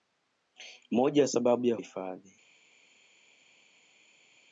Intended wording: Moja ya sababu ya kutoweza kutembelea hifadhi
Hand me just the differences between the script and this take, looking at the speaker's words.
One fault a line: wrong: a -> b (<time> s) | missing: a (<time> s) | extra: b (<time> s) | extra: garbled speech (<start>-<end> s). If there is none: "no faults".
missing: kutoweza kutembelea (1.8 s)